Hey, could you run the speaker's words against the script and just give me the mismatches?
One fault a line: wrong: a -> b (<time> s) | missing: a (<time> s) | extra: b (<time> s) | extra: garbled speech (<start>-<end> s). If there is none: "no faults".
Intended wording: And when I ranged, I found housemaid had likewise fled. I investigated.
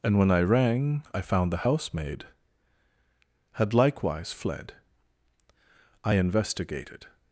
wrong: ranged -> rang (0.4 s)
extra: the (1.5 s)